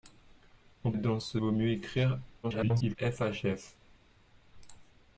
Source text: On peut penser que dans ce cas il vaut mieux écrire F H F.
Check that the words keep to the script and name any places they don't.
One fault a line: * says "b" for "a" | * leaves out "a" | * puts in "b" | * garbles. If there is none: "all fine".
* leaves out "peut penser que"
* leaves out "cas il"
* garbles